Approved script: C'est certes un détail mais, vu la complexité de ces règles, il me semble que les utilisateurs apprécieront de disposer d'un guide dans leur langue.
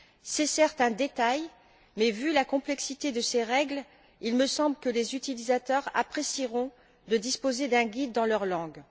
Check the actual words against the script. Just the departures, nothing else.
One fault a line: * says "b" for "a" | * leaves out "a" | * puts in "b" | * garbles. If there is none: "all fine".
all fine